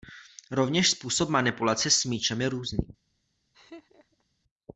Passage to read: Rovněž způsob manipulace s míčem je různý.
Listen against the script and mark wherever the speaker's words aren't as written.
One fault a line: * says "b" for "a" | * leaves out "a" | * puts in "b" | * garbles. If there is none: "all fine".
all fine